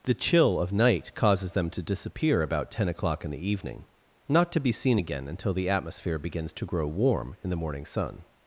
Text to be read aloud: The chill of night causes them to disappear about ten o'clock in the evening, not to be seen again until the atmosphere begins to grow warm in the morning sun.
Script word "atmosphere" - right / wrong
right